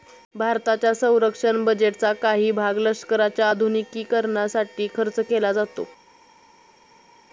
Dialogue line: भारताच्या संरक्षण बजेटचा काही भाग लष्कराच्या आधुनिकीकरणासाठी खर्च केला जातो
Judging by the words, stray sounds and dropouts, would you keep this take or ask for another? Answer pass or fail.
pass